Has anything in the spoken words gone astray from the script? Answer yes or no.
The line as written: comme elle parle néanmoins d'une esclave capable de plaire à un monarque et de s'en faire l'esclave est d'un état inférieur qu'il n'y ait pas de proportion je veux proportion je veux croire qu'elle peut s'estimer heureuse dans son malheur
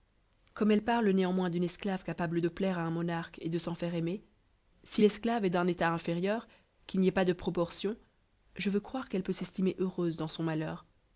yes